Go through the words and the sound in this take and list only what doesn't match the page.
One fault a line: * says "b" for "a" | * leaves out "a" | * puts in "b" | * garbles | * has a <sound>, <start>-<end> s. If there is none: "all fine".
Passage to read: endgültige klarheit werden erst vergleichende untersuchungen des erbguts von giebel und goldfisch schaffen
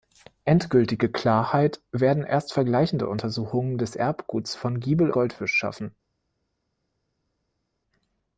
* leaves out "und"